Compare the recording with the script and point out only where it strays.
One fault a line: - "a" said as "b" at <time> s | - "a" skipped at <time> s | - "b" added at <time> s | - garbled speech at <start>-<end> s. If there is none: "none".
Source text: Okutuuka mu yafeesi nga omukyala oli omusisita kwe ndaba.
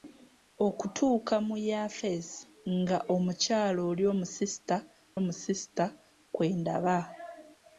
- "omusisita" added at 5.2 s